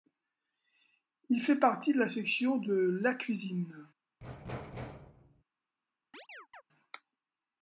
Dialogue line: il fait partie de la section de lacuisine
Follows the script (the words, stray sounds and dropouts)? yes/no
no